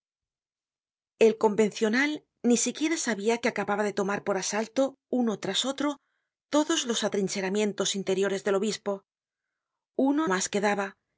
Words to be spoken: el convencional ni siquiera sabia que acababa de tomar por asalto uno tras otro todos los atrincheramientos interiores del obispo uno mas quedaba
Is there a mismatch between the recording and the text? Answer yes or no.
no